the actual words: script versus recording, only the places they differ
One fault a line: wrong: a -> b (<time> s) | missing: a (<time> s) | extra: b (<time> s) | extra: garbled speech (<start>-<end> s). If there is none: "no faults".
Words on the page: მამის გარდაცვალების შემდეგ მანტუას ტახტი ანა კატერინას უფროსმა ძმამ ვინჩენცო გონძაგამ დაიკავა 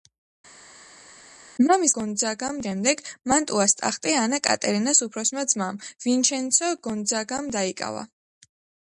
wrong: გარდაცვალების -> გონძაგამ (2.0 s)